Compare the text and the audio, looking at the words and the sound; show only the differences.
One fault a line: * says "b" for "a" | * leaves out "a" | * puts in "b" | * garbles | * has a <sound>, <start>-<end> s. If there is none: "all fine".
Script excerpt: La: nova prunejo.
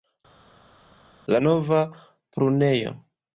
all fine